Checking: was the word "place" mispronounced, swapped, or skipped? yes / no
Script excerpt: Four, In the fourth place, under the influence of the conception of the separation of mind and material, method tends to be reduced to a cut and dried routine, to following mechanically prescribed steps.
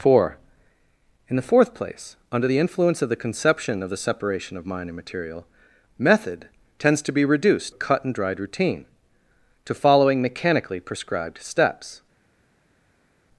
no